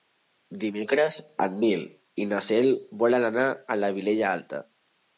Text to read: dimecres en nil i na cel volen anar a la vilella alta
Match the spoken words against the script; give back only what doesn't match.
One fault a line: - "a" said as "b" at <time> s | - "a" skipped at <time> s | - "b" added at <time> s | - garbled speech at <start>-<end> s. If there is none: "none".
none